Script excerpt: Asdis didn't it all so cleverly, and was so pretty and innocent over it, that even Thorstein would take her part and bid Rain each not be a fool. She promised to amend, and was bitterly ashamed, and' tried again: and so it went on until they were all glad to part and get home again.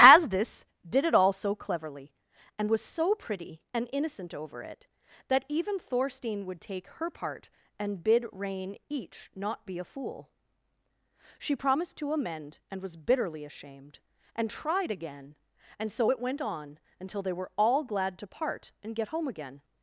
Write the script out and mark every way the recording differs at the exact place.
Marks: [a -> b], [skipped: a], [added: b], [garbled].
Asdis [didn't -> did] it all so cleverly, and was so pretty and innocent over it, that even Thorstein would take her part and bid Rain each not be a fool. She promised to amend, and was bitterly ashamed, and' tried again: and so it went on until they were all glad to part and get home again.